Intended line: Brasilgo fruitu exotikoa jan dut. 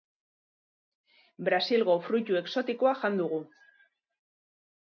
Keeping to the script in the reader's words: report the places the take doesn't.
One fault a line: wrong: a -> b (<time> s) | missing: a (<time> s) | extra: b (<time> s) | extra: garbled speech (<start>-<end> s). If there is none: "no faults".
wrong: dut -> dugu (3.2 s)